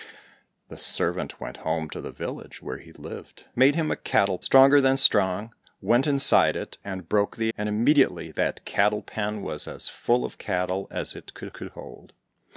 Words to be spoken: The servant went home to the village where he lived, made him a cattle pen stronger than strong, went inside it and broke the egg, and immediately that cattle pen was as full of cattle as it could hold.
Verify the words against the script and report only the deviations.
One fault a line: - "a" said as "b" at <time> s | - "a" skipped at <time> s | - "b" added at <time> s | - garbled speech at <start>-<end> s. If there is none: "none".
- "pen" skipped at 4.4 s
- "egg" skipped at 7.5 s
- "could" added at 11.5 s